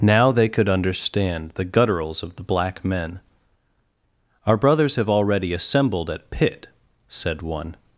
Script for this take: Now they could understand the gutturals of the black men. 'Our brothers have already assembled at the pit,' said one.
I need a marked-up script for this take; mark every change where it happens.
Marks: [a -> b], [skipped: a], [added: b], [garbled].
Now they could understand the gutturals of the black men. 'Our brothers have already assembled at [skipped: the] pit,' said one.